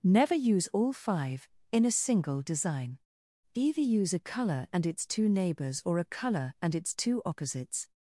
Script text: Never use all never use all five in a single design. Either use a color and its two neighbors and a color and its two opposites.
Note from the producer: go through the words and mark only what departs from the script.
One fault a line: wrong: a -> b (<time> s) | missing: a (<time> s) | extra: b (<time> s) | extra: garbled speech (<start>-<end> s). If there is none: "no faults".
missing: never use all (0.9 s)
wrong: and -> or (5.8 s)